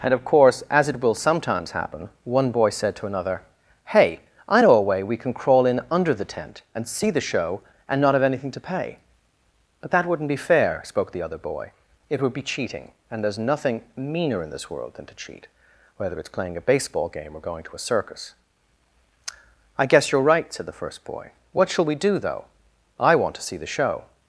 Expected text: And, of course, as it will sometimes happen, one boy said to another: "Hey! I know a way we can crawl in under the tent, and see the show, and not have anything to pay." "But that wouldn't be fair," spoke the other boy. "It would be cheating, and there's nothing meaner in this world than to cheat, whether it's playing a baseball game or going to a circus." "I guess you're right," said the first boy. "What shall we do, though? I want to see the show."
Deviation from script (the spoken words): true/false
false